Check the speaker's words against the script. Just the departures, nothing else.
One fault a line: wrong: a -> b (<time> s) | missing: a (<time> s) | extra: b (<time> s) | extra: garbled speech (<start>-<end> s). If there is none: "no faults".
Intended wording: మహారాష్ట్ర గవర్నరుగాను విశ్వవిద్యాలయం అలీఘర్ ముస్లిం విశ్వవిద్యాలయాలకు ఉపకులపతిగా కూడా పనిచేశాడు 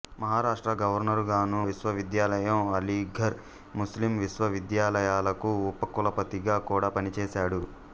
no faults